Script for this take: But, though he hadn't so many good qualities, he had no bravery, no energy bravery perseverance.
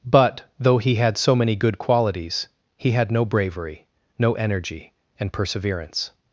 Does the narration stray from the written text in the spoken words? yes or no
yes